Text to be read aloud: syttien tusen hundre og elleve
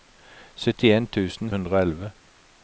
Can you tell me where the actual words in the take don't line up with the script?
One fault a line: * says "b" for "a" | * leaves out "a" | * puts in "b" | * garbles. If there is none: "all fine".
all fine